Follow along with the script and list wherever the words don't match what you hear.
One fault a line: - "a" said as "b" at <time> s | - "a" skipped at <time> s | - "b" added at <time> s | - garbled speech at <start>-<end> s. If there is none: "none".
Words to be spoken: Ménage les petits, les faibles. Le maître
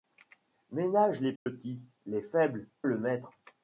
none